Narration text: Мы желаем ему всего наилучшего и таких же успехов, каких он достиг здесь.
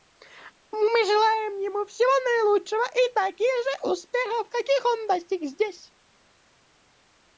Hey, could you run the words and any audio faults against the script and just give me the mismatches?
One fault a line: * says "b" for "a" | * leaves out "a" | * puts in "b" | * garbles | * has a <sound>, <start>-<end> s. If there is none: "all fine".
all fine